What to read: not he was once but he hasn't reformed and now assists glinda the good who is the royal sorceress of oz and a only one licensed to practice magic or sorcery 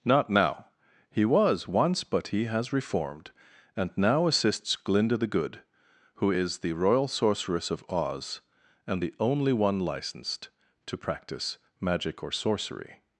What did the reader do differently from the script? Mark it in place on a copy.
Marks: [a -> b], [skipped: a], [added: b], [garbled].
not [added: now] he was once but he [hasn't -> has] reformed and now assists glinda the good who is the royal sorceress of oz and [a -> the] only one licensed to practice magic or sorcery